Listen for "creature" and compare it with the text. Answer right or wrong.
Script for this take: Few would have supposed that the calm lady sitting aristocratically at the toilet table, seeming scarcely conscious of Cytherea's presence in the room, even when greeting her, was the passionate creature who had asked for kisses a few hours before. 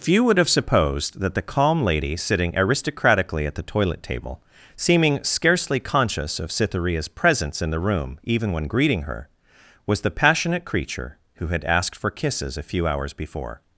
right